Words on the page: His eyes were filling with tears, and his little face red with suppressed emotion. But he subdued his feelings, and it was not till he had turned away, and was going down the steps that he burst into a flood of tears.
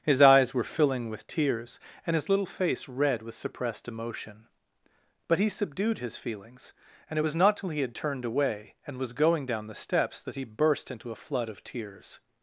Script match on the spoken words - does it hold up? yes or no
yes